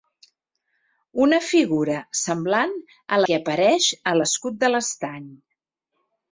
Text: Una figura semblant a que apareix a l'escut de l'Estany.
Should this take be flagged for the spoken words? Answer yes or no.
no